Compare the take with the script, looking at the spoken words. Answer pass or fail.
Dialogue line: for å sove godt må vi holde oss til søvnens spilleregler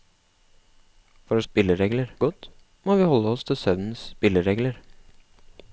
fail